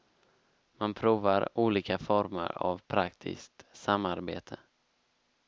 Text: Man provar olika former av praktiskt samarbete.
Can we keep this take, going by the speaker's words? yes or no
yes